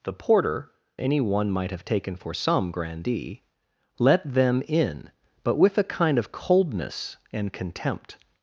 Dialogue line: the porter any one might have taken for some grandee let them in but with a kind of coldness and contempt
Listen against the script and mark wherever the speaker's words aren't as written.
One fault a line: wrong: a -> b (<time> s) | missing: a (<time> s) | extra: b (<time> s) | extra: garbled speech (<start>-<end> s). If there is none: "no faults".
no faults